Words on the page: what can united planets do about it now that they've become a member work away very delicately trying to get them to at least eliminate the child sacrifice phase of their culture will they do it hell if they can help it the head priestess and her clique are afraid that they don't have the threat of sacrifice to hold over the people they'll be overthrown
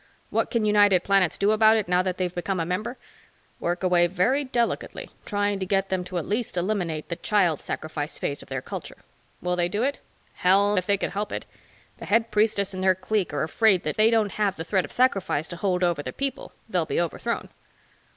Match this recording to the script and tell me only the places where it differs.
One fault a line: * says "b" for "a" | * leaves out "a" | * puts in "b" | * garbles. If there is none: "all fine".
all fine